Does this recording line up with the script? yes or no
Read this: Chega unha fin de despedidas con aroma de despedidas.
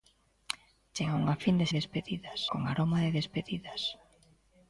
yes